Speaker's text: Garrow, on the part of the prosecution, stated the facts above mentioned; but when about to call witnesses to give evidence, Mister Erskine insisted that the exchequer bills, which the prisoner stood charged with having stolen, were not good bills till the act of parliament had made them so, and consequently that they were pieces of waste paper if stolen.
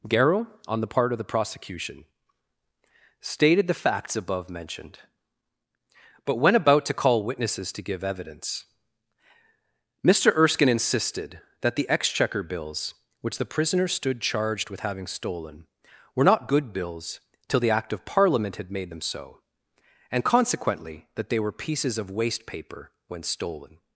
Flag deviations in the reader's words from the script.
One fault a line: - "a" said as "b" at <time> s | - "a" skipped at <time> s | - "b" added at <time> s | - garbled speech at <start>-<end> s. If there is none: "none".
- "if" said as "when" at 23.1 s